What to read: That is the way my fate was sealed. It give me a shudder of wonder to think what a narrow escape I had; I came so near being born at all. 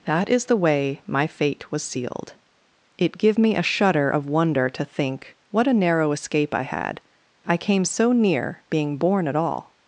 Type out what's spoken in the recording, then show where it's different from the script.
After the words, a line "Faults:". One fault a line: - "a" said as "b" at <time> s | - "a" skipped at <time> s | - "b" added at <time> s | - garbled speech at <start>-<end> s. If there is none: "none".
That is the way my fate was sealed. It give me a shudder of wonder to think what a narrow escape I had; I came so near being born at all.
Faults:
none